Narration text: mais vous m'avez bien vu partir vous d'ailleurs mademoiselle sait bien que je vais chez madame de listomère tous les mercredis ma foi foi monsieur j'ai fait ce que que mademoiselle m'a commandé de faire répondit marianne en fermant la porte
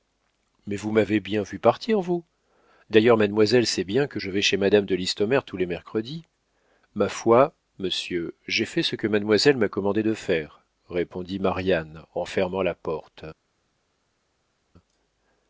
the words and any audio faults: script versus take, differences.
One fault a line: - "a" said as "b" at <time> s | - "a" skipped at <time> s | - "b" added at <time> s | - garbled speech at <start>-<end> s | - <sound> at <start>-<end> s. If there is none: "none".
- "foi" skipped at 7.5 s
- "que" skipped at 9.1 s